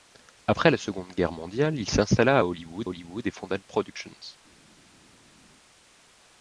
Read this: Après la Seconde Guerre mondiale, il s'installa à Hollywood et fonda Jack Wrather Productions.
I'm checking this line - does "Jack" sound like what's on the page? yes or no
no